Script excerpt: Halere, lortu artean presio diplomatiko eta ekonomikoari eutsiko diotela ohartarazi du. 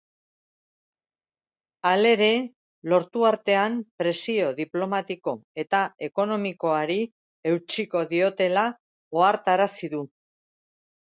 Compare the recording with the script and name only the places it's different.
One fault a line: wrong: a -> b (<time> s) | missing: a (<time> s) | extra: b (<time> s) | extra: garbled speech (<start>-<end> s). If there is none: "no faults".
no faults